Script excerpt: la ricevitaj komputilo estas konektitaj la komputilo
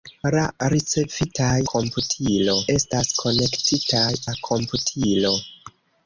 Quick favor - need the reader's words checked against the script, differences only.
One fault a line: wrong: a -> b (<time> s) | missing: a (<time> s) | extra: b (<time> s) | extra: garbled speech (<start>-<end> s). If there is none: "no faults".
no faults